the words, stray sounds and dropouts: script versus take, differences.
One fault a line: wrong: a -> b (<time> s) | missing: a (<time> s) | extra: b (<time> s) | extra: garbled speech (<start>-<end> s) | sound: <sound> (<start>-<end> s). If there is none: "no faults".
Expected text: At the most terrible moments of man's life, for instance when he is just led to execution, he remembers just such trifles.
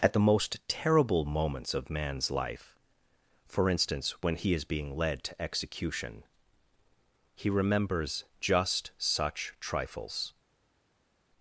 wrong: just -> being (4.7 s)